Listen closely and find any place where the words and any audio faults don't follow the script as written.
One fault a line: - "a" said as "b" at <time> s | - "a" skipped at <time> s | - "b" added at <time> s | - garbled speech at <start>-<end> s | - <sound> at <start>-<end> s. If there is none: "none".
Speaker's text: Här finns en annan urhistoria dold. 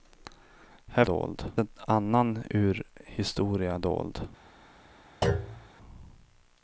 - "finns" said as "dold" at 1.0 s
- thud at 5.2-5.7 s